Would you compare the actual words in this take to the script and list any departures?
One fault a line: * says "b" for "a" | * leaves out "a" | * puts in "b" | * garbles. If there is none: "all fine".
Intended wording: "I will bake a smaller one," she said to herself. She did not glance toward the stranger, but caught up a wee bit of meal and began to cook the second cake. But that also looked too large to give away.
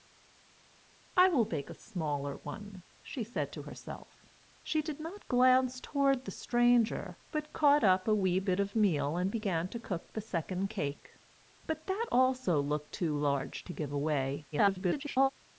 * garbles